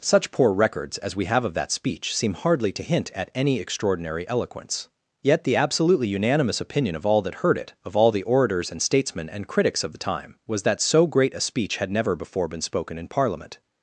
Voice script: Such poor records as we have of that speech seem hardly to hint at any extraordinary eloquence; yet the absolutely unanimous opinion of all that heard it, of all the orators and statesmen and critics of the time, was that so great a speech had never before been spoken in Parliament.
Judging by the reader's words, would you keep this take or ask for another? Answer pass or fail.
pass